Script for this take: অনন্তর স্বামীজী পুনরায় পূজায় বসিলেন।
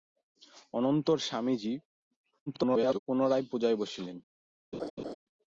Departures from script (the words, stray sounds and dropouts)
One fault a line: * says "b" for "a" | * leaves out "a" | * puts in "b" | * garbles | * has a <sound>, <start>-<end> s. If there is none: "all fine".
* garbles
* has a laugh, 4.7-5.1 s